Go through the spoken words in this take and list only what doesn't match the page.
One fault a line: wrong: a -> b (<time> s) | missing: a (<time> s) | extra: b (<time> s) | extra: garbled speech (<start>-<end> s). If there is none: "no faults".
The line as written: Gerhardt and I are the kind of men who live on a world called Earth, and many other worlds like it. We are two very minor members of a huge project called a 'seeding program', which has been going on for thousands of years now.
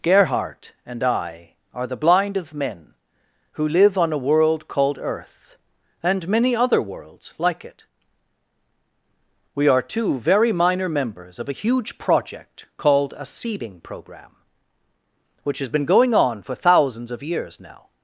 wrong: kind -> blind (1.9 s)